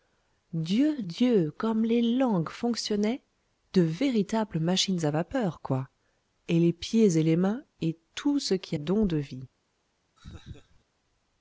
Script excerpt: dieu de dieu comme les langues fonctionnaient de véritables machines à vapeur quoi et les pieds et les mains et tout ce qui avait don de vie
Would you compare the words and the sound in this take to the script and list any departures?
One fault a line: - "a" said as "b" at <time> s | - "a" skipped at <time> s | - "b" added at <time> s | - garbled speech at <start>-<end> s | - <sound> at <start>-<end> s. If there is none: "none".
- "de" skipped at 1.0 s
- "avait" skipped at 8.8 s
- laugh at 10.2-10.8 s